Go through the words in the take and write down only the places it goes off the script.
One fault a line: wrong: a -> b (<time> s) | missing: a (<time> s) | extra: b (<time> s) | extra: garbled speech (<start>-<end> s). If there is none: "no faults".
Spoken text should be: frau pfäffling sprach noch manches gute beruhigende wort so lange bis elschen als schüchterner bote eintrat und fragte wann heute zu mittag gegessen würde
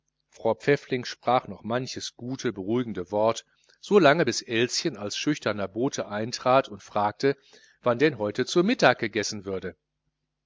extra: denn (8.0 s)